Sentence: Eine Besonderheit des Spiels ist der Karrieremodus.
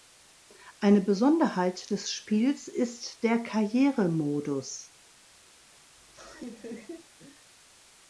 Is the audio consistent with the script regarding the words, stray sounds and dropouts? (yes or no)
no